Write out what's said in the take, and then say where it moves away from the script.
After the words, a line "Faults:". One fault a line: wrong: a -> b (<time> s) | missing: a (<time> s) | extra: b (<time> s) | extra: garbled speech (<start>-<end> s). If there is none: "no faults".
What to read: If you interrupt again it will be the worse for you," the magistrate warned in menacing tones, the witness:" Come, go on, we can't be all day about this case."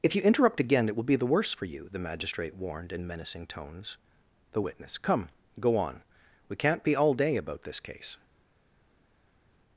If you interrupt again it will be the worse for you," the magistrate warned in menacing tones, the witness:" Come, go on, we can't be all day about this case."
Faults:
no faults